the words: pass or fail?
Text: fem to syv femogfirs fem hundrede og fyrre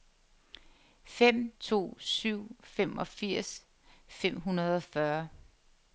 pass